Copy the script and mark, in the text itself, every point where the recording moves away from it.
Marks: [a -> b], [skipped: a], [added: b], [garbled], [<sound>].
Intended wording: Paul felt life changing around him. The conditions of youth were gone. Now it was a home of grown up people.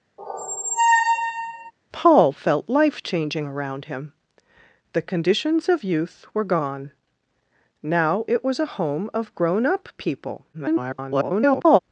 [squeak] Paul felt life changing around him. The conditions of youth were gone. Now it was a home of grown up people. [garbled]